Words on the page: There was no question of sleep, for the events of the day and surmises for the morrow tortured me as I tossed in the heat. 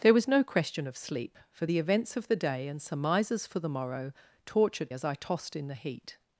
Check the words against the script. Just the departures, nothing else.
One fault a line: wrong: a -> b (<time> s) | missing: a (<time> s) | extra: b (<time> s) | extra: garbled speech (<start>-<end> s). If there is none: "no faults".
missing: me (4.9 s)